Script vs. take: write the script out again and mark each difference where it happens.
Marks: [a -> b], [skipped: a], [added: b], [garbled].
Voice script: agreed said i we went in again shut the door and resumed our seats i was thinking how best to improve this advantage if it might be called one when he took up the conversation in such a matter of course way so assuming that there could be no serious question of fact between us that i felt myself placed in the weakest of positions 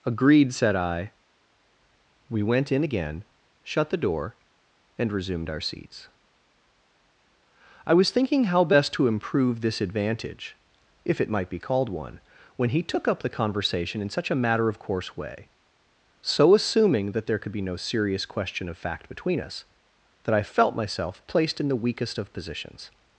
agreed said i we went in again shut the door and resumed our seats i was thinking how best to improve this advantage if it might be called one when he took up the conversation in such a matter of course way so assuming that there could be no serious question of fact between us that i felt myself placed in the weakest of positions